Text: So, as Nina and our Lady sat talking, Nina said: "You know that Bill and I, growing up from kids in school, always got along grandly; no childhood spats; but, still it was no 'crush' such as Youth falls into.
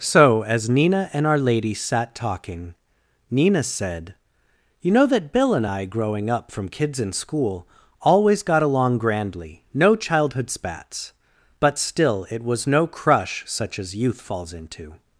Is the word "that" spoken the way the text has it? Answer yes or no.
yes